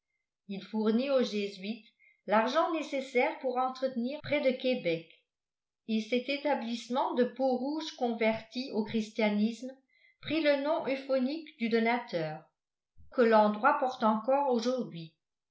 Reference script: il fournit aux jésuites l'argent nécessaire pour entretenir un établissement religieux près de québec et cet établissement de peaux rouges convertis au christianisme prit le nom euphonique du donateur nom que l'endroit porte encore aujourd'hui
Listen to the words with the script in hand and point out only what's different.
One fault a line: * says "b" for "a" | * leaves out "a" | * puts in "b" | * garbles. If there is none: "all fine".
* leaves out "un établissement religieux"
* leaves out "nom"